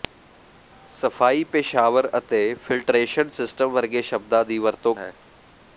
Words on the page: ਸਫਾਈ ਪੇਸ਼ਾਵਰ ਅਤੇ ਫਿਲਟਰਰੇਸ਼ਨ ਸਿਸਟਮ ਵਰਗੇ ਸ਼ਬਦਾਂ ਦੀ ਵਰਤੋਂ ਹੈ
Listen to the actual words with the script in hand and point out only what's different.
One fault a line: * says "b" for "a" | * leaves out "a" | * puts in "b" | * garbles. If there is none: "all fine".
all fine